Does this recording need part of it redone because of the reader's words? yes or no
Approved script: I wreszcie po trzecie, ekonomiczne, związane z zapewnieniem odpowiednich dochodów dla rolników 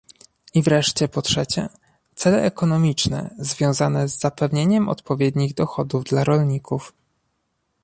yes